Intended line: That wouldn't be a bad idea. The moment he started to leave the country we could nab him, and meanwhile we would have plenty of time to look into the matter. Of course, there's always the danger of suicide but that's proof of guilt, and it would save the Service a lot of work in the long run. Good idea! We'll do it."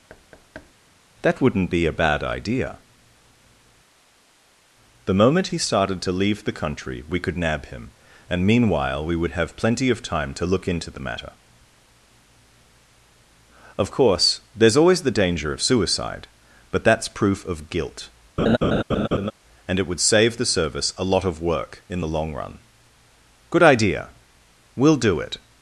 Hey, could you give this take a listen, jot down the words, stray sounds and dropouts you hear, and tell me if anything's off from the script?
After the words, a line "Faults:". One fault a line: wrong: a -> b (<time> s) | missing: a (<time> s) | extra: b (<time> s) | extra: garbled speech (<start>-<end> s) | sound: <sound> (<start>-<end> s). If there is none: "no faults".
That wouldn't be a bad idea. The moment he started to leave the country we could nab him, and meanwhile we would have plenty of time to look into the matter. Of course, there's always the danger of suicide but that's proof of guilt, and it would save the Service a lot of work in the long run. Good idea! We'll do it."
Faults:
sound: thud (0.1-0.7 s)
sound: laugh (18.4-19.3 s)